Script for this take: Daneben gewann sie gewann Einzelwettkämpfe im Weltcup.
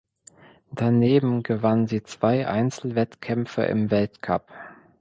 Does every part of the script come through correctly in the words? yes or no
no